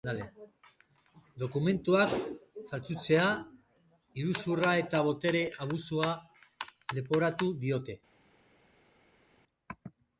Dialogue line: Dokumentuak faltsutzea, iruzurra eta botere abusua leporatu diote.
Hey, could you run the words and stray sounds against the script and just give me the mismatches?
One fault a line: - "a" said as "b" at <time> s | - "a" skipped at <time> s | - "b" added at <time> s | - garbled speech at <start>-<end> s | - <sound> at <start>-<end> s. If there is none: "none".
none